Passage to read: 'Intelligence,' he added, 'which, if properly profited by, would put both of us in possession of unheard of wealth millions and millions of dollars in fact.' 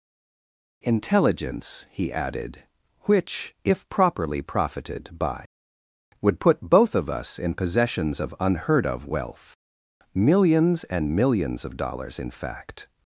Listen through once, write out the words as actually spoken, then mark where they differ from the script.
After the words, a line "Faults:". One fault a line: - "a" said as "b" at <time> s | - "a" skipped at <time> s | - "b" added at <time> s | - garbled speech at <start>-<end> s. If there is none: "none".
'Intelligence,' he added, 'which, if properly profited by, would put both of us in possessions of unheard of wealth millions and millions of dollars in fact.'
Faults:
- "possession" said as "possessions" at 7.5 s